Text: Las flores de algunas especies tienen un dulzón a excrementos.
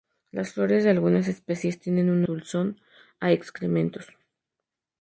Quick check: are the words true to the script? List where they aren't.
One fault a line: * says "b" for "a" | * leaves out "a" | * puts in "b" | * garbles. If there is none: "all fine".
all fine